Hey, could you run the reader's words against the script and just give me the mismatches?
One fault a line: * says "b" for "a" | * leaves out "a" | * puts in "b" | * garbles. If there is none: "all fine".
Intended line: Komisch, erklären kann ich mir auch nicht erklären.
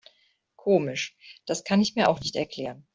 * says "das" for "erklären"